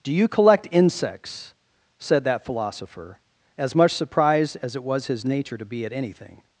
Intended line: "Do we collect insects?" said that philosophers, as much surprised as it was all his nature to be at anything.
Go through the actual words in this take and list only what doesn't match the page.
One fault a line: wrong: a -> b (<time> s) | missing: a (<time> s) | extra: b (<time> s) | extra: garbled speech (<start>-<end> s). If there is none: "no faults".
wrong: we -> you (0.1 s)
wrong: philosophers -> philosopher (2.5 s)
missing: all (5.1 s)